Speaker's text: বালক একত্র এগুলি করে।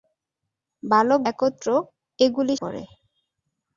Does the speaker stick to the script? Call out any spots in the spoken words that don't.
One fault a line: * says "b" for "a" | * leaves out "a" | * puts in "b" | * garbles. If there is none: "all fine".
all fine